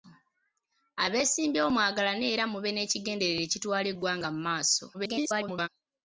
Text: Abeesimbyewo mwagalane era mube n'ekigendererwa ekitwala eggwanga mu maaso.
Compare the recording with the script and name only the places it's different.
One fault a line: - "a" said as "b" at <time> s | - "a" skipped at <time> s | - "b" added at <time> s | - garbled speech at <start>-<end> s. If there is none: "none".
- garbled speech at 4.9-5.7 s